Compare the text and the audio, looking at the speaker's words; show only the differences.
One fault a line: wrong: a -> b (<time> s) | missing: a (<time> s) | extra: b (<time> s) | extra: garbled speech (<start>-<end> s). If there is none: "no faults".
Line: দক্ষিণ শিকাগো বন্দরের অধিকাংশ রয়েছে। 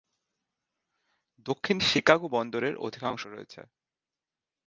no faults